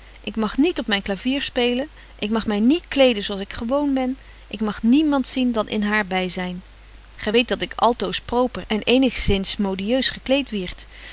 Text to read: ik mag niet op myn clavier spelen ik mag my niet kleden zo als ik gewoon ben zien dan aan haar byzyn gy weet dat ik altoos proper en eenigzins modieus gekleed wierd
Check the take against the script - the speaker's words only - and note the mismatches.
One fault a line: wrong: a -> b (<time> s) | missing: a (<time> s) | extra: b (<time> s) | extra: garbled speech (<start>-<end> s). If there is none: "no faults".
extra: ik mag niemand (4.5 s)
wrong: aan -> in (5.7 s)